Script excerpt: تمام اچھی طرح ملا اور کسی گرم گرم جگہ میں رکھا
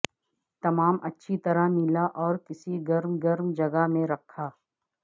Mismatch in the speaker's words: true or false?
false